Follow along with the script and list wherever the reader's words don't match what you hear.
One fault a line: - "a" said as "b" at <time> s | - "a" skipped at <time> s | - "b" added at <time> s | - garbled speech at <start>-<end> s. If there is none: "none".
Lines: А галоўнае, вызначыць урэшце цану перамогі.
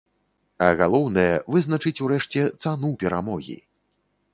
none